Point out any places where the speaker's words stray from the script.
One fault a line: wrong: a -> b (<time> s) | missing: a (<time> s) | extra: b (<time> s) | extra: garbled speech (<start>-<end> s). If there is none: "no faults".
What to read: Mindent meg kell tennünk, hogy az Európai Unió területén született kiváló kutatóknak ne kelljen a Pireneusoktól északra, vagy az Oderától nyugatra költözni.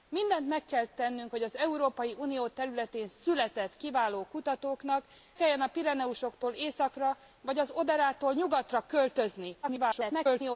missing: ne (5.0 s)
extra: garbled speech (9.6-10.6 s)